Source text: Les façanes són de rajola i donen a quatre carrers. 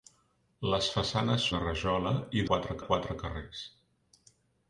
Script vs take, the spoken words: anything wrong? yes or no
yes